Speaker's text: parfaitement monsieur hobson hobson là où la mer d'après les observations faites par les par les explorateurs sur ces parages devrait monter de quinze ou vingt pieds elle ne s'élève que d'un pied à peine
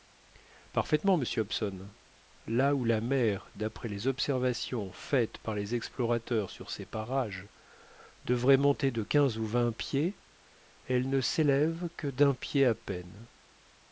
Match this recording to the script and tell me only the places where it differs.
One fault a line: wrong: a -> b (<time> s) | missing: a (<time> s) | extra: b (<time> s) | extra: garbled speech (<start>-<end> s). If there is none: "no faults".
missing: hobson (1.9 s)
missing: par les (5.8 s)